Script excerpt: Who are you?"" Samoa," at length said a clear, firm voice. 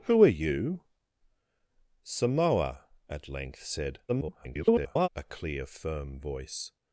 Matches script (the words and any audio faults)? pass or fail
fail